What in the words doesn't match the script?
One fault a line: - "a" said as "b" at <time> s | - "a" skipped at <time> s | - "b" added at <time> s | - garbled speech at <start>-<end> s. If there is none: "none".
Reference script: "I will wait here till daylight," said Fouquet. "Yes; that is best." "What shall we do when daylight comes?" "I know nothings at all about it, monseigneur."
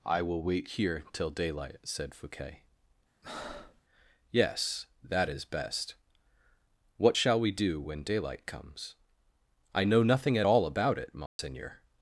- "nothings" said as "nothing" at 10.0 s